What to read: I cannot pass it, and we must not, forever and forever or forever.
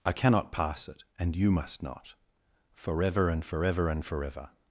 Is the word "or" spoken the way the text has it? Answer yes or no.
no